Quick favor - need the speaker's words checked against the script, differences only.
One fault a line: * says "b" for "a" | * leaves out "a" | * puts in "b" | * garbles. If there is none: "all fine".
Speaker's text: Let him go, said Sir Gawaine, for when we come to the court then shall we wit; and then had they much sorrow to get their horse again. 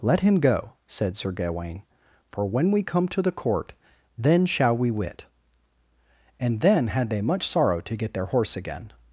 all fine